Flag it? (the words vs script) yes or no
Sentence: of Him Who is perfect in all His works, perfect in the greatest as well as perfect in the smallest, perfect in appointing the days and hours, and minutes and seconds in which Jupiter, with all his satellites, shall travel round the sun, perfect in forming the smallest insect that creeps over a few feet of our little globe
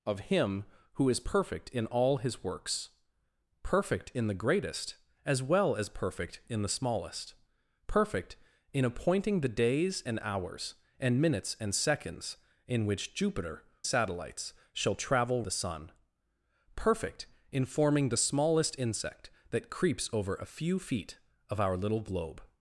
yes